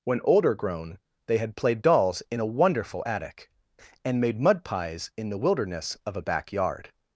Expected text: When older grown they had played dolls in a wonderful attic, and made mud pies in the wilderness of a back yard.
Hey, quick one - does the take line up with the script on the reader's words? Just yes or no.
yes